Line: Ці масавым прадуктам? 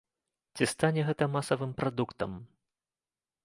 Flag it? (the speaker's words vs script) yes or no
yes